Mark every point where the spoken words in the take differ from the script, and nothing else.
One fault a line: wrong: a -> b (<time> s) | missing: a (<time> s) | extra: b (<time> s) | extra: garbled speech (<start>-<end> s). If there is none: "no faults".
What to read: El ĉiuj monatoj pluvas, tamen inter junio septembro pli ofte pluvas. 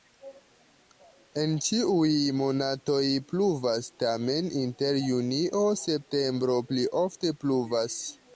wrong: El -> En (1.4 s)